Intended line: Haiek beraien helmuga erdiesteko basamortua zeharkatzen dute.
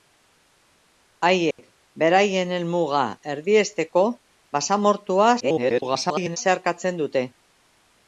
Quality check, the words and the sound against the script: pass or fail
fail